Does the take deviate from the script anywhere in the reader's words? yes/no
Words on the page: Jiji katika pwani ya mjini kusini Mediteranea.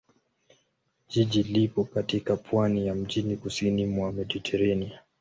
yes